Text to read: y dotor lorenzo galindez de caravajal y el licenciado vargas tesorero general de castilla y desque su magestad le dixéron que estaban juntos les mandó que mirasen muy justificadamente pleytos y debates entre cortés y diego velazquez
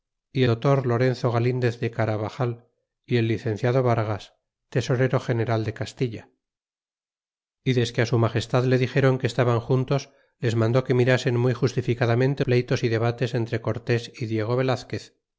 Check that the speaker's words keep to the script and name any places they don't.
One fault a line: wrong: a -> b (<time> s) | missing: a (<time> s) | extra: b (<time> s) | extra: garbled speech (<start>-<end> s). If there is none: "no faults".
no faults